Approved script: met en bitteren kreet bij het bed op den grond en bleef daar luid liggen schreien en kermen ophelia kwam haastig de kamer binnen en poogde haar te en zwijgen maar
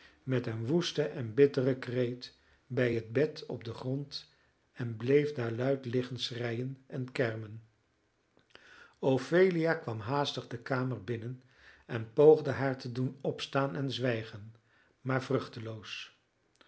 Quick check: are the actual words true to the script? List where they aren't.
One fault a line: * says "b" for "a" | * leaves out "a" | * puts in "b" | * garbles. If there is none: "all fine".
* puts in "een woesten"
* puts in "doen opstaan"